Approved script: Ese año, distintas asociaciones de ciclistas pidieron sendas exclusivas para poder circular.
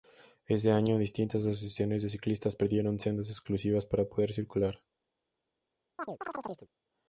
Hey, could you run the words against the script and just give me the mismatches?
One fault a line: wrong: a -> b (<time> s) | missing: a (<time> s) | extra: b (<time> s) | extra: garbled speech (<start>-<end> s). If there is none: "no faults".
no faults